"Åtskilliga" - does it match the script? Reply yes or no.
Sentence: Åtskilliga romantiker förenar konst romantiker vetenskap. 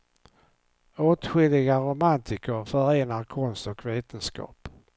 yes